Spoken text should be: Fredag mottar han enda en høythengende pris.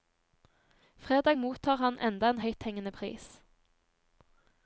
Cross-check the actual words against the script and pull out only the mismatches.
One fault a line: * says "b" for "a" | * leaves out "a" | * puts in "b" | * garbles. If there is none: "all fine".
all fine